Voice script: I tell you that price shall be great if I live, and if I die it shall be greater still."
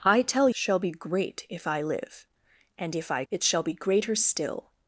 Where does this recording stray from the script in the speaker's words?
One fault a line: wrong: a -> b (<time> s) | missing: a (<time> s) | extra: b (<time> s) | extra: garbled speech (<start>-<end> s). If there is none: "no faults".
missing: you that price (0.5 s)
missing: die (3.2 s)